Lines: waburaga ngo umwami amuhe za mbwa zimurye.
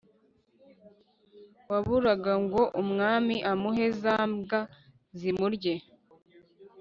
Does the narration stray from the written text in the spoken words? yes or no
no